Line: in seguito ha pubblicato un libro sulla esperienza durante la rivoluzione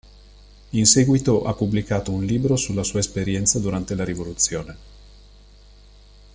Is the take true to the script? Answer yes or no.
no